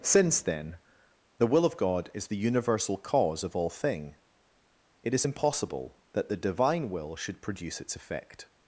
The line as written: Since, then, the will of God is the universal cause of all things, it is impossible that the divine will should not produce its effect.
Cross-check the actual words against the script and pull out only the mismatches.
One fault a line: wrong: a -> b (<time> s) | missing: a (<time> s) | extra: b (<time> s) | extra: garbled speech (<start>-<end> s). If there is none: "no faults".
wrong: things -> thing (3.7 s)
missing: not (7.4 s)